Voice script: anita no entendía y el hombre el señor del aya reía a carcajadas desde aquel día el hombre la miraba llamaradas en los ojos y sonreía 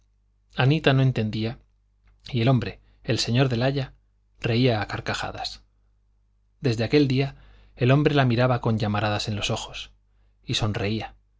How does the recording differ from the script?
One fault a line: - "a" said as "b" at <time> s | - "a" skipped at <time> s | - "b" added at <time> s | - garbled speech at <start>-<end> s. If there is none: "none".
- "con" added at 8.6 s